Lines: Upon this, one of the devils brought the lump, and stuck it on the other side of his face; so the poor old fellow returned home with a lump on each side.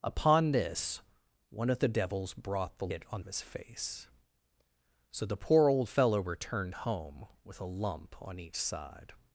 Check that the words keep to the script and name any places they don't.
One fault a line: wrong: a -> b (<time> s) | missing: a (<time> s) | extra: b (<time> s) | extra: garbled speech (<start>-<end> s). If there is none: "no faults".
missing: lump and stuck (2.9 s)
missing: the other side (3.2 s)